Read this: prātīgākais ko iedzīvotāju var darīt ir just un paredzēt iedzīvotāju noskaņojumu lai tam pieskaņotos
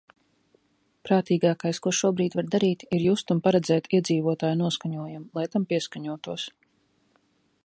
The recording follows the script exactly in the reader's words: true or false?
false